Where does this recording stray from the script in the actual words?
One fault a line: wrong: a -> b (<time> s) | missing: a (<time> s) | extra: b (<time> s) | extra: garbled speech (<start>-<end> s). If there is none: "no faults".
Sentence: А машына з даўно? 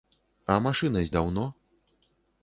no faults